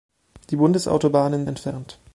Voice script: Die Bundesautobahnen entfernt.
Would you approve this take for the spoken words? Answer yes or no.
yes